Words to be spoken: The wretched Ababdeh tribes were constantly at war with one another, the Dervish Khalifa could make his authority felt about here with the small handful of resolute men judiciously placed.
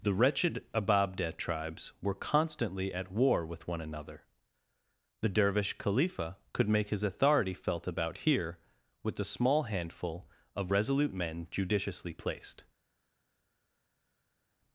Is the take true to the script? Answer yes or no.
yes